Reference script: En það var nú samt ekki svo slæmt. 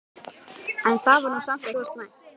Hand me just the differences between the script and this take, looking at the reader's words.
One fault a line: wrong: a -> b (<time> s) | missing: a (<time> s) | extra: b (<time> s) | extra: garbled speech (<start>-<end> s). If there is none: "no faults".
missing: ekki (1.7 s)